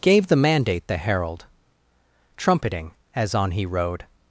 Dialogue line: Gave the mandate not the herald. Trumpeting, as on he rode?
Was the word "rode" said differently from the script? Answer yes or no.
no